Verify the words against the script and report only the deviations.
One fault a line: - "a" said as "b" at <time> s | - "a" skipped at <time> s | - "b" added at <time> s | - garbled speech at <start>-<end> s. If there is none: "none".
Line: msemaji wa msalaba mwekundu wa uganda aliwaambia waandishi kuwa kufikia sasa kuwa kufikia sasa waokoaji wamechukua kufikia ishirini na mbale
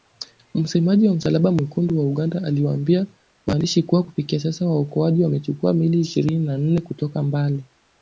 - "kuwa kufikia sasa" skipped at 4.7 s
- "kufikia" said as "miili" at 5.7 s
- "nne kutoka" added at 6.6 s